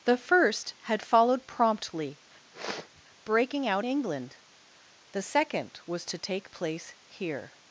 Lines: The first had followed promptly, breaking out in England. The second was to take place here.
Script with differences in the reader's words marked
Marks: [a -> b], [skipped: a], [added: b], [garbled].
The first had followed promptly, breaking out [skipped: in] England. The second was to take place here.